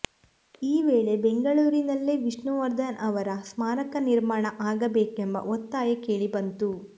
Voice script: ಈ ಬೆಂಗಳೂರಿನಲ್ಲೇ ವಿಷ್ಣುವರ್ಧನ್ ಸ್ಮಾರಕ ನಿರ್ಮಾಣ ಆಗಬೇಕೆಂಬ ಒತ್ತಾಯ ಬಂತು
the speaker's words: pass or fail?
fail